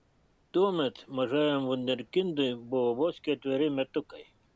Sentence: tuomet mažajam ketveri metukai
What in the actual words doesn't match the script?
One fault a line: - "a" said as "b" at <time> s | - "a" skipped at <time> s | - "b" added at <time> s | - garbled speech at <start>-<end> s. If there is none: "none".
- "vunderkindui buvo vos" added at 1.7 s